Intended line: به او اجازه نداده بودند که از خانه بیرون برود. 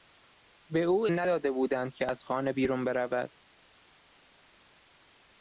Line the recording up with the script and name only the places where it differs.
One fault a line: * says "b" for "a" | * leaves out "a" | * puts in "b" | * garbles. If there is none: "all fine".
* leaves out "اجازه"